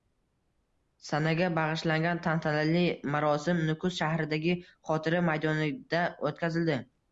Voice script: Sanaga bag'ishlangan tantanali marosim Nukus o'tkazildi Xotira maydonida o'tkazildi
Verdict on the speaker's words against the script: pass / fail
fail